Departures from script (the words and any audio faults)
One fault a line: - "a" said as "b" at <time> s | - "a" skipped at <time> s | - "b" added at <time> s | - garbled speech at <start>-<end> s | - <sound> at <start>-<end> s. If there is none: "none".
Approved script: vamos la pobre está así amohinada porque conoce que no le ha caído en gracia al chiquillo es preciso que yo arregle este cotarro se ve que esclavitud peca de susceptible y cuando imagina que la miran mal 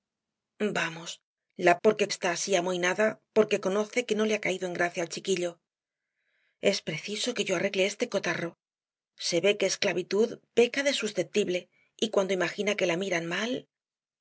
- "pobre" said as "porque" at 1.8 s